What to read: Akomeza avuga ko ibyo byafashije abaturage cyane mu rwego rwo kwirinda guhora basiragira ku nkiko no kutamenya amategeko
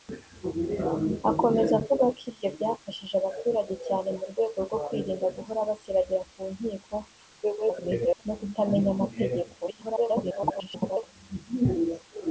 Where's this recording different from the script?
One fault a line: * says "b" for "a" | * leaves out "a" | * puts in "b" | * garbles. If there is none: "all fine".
* garbles
* garbles